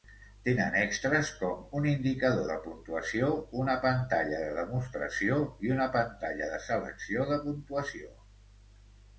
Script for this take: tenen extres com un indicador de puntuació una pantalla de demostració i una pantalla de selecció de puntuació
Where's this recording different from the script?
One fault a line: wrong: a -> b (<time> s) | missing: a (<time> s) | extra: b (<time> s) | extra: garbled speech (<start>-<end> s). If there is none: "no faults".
no faults